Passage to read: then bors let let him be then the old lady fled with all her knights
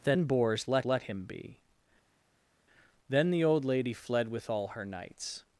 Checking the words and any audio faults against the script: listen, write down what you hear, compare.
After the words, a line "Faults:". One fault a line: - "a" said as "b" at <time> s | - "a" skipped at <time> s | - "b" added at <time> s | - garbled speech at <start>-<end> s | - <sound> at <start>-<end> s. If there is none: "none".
then bors let let him be then the old lady fled with all her knights
Faults:
none